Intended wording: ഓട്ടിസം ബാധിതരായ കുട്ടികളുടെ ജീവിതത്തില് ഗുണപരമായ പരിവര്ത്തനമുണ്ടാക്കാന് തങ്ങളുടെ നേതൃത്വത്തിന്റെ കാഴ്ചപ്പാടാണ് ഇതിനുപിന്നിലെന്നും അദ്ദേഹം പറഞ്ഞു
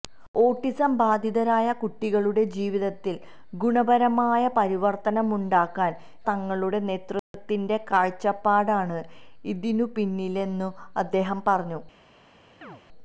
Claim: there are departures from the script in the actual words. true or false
false